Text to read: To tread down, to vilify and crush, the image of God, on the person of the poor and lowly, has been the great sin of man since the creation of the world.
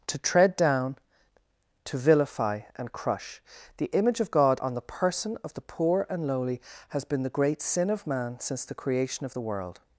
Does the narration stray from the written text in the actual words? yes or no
no